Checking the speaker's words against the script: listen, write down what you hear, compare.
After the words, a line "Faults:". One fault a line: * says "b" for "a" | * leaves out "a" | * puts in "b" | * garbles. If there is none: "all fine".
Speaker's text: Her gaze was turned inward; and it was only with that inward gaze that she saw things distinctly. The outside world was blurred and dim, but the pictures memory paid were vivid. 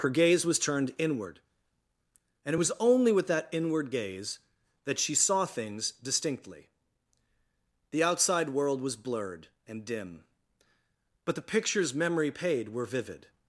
Her gaze was turned inward; and it was only with that inward gaze that she saw things distinctly. The outside world was blurred and dim, but the pictures memory paid were vivid.
Faults:
all fine